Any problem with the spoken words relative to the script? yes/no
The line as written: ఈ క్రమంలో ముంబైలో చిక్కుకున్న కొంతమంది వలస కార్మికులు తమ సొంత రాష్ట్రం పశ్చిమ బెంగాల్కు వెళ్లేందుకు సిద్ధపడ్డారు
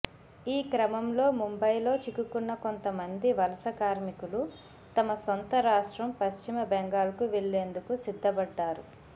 no